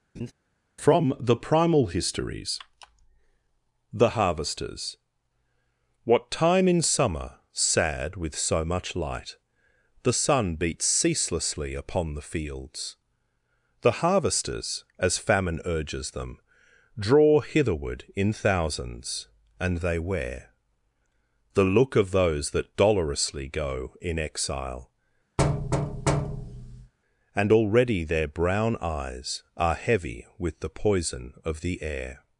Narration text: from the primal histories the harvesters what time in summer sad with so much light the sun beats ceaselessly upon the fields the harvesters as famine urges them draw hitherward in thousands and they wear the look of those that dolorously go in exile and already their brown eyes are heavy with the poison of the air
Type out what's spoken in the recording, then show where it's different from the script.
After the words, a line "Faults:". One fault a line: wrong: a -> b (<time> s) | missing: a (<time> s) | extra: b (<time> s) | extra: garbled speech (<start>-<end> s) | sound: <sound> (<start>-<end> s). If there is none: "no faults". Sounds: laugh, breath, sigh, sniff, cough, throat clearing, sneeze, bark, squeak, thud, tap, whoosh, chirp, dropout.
from the primal histories the harvesters what time in summer sad with so much light the sun beats ceaselessly upon the fields the harvesters as famine urges them draw hitherward in thousands and they wear the look of those that dolorously go in exile and already their brown eyes are heavy with the poison of the air
Faults:
sound: laugh (0.2-0.3 s)
sound: thud (25.4-26.9 s)